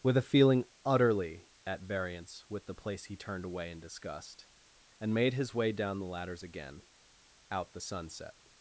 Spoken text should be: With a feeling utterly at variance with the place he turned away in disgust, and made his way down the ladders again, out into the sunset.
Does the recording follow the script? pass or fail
fail